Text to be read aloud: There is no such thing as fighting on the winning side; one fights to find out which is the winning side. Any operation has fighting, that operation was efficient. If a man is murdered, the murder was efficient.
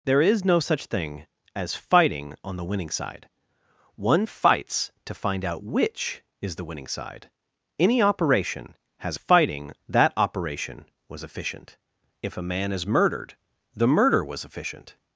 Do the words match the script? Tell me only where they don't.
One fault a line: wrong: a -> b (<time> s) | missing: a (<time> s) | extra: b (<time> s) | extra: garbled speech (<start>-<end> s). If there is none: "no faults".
no faults